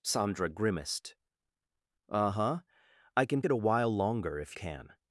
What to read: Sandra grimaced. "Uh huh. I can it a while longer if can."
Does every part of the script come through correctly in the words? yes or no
yes